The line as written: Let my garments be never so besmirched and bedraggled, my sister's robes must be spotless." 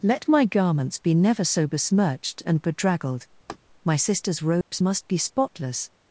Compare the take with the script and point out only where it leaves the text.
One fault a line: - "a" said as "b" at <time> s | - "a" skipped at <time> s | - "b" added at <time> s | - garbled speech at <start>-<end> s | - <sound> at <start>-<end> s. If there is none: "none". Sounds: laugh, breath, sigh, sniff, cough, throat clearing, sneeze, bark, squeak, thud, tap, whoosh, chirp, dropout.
- laugh at 3.5-3.6 s
- dropout at 4.6-4.7 s